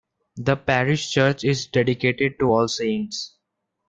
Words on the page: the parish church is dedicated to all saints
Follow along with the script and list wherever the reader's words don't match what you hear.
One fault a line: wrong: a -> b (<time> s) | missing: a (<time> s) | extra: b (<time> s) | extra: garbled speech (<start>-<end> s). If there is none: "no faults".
no faults